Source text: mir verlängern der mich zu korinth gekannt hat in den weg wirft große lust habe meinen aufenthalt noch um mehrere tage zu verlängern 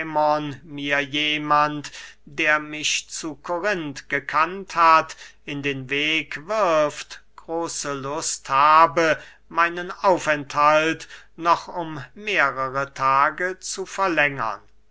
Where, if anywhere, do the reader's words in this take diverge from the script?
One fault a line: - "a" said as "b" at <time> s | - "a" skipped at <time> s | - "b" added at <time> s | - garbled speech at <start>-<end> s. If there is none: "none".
- "verlängern" said as "jemand" at 1.0 s